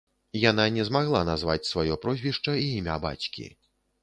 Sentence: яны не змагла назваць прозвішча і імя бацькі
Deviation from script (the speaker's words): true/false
true